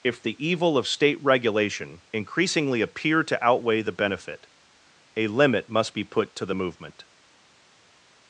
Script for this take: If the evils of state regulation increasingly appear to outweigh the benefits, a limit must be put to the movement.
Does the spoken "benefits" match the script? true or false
false